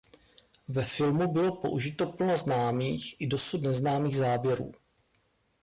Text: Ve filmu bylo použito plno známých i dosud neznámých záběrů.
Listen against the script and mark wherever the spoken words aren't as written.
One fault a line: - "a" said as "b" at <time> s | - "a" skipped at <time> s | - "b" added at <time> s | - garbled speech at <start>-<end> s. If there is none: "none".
none